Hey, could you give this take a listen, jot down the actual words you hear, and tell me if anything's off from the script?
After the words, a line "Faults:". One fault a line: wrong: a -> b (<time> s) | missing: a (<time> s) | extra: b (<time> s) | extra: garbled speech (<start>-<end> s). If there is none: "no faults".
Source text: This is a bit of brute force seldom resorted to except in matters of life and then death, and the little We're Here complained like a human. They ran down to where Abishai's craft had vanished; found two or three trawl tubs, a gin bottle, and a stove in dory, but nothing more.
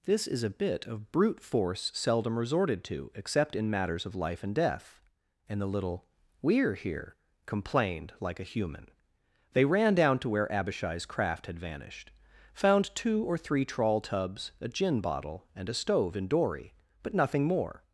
This is a bit of brute force seldom resorted to except in matters of life and death, and the little We're Here complained like a human. They ran down to where Abishai's craft had vanished; found two or three trawl tubs, a gin bottle, and a stove in dory, but nothing more.
Faults:
missing: then (4.5 s)